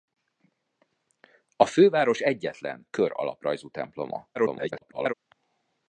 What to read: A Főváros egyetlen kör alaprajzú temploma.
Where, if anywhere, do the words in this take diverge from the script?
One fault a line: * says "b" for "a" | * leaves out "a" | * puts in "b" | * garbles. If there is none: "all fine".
* garbles